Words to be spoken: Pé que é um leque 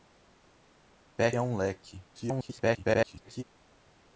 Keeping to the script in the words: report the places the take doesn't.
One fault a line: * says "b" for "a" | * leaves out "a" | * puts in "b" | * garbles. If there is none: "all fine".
* leaves out "que"
* garbles